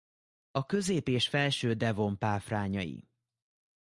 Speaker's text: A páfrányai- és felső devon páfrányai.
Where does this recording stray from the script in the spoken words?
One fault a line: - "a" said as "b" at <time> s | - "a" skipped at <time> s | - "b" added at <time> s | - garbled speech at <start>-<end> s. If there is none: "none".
- "páfrányai" said as "közép" at 0.7 s